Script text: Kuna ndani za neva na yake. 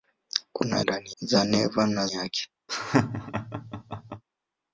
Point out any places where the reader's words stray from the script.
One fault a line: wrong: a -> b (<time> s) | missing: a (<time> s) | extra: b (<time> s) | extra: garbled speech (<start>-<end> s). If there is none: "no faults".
no faults